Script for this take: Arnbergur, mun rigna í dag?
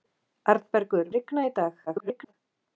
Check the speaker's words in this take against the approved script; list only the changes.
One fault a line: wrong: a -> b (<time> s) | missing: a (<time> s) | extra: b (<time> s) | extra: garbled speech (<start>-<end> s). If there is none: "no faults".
missing: mun (1.1 s)
extra: garbled speech (1.9-2.3 s)